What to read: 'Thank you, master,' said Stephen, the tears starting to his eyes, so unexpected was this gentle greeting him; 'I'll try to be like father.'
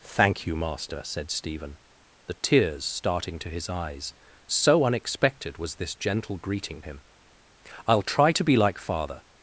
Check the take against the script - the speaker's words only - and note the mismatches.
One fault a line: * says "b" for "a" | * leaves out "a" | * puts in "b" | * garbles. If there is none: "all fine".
all fine